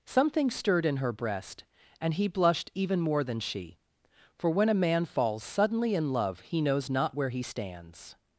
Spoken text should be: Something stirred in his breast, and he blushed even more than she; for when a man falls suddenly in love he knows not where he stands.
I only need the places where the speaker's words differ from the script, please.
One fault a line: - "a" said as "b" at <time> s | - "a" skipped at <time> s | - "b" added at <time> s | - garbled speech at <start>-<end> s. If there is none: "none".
- "his" said as "her" at 1.0 s